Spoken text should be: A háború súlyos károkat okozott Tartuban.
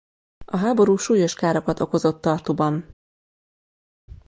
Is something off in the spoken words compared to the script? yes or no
no